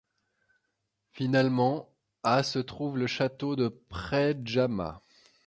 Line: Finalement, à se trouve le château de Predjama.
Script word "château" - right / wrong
right